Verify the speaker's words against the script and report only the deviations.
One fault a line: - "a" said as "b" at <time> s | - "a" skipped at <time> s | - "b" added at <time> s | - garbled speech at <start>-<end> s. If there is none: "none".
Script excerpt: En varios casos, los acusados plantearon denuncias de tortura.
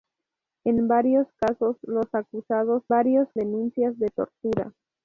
- "plantearon" said as "varios" at 2.9 s